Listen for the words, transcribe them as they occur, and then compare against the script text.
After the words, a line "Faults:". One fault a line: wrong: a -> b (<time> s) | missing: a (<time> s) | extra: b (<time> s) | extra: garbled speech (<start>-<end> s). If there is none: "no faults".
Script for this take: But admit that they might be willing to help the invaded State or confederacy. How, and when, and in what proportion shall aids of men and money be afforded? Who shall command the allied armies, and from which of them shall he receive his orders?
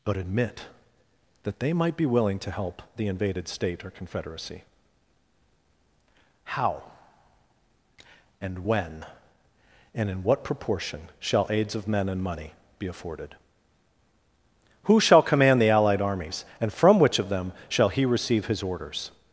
But admit that they might be willing to help the invaded State or confederacy. How, and when, and in what proportion shall aids of men and money be afforded? Who shall command the allied armies, and from which of them shall he receive his orders?
Faults:
no faults